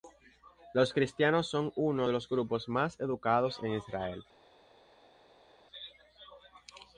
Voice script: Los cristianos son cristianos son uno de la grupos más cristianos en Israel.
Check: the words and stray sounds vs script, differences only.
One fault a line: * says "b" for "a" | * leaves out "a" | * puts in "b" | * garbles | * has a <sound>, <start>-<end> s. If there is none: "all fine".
* leaves out "cristianos son"
* says "los" for "la"
* says "educados" for "cristianos"